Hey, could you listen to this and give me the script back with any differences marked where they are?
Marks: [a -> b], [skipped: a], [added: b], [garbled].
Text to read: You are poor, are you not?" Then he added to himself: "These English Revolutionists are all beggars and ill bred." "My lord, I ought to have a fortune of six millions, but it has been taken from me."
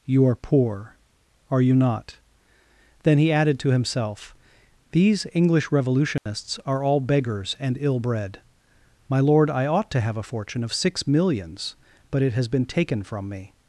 You are poor, are you not?" Then he added to himself: "These English Revolutionists are all beggars and ill bred." "My lord, I ought to have a fortune of six millions, but it has been taken from me."